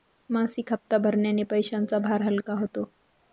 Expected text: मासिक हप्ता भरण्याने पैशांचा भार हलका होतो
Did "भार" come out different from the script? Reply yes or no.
no